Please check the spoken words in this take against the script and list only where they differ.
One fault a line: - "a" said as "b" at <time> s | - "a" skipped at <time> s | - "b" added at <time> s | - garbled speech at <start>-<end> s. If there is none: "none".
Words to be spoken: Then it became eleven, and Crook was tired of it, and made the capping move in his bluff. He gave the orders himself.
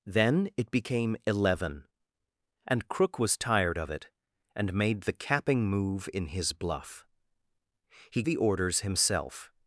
- "gave" skipped at 8.2 s